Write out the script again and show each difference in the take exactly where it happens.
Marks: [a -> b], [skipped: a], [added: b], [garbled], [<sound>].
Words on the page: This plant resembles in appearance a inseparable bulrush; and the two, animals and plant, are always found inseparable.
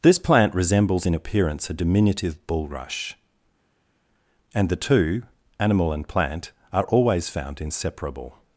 This plant resembles in appearance a [inseparable -> diminutive] bulrush; and the two, [animals -> animal] and plant, are always found inseparable.